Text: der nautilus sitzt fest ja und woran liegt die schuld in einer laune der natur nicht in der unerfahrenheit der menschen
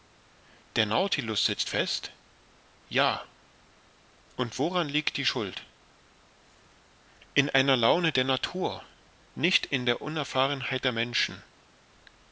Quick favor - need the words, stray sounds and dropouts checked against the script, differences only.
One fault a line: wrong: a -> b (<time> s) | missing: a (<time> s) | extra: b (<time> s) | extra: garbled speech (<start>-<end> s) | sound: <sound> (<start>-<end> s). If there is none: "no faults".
no faults